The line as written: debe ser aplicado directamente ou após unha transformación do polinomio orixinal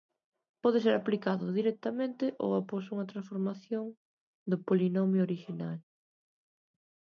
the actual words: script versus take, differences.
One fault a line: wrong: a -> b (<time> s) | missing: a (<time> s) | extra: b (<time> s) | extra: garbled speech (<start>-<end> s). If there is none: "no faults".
wrong: debe -> pode (0.6 s)